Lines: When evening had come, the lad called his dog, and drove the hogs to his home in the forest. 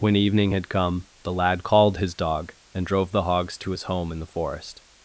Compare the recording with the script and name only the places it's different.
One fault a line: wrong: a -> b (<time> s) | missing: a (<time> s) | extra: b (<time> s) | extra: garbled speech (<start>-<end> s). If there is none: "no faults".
no faults